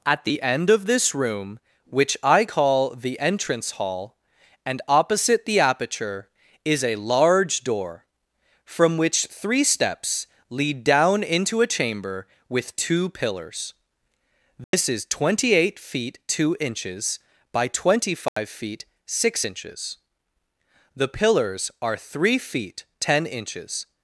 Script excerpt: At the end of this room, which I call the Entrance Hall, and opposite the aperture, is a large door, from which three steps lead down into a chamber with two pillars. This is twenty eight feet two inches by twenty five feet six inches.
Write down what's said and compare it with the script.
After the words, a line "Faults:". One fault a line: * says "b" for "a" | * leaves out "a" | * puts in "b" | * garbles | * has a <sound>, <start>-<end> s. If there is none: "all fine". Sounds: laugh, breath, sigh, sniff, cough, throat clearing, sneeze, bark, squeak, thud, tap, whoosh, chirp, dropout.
At the end of this room, which I call the Entrance Hall, and opposite the aperture, is a large door, from which three steps lead down into a chamber with two pillars. This is twenty eight feet two inches by twenty five feet six inches. The pillars are three feet ten inches
Faults:
* has a dropout, 14.6-14.7 s
* has a dropout, 18.3-18.4 s
* puts in "The pillars are three feet ten inches"